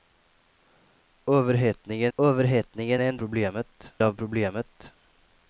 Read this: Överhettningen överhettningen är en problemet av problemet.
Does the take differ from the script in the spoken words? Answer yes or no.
no